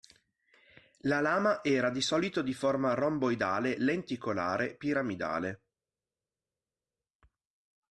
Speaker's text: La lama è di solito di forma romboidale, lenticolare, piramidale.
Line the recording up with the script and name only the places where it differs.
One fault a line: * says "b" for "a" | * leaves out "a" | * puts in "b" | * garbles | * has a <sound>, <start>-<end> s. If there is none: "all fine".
* says "era" for "è"